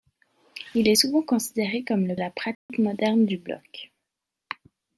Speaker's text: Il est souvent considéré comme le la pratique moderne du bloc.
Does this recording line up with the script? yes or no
yes